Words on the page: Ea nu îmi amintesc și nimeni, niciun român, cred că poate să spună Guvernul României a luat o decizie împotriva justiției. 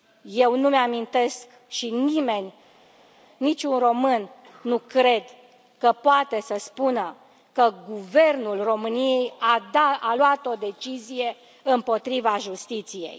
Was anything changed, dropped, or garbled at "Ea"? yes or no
yes